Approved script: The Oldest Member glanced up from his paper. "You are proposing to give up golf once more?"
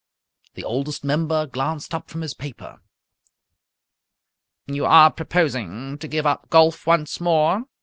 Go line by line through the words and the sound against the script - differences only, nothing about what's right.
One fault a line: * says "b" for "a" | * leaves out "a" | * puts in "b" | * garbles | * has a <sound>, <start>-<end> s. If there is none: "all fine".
all fine